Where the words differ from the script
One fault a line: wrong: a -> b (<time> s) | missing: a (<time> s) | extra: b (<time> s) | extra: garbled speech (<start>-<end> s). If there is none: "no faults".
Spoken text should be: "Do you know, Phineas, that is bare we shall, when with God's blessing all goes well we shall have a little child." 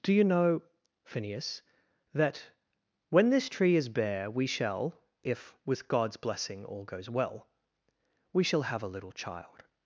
extra: when this tree (3.1 s)
wrong: when -> if (5.2 s)